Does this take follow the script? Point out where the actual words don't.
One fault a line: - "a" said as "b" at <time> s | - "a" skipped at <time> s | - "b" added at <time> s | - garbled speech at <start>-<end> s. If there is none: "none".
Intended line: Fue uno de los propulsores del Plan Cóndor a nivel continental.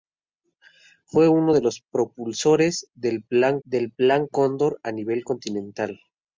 - "del Plan" added at 3.6 s